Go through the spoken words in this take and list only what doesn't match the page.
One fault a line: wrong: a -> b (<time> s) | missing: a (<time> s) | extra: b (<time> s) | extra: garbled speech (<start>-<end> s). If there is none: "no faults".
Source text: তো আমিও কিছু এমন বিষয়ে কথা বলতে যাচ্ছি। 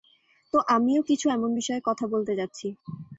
no faults